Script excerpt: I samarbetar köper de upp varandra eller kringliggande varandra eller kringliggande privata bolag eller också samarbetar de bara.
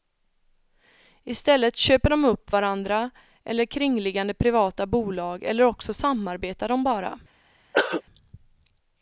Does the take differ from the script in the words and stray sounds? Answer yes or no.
yes